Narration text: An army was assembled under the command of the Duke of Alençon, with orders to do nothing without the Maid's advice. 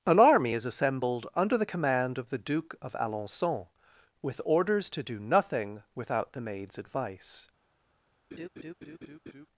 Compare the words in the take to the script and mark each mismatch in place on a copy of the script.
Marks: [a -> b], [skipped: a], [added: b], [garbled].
An army [was -> is] assembled under the command of the Duke of Alençon, with orders to do nothing without the Maid's advice.